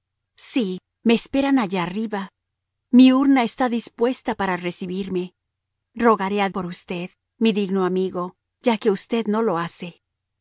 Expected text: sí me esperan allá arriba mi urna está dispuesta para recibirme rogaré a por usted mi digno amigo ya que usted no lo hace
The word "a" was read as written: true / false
true